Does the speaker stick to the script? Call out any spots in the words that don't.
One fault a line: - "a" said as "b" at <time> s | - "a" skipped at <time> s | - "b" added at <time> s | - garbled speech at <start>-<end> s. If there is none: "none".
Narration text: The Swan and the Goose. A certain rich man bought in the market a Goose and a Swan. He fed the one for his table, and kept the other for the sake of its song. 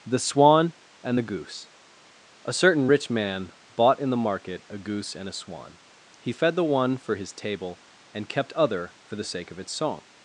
- "the" skipped at 8.5 s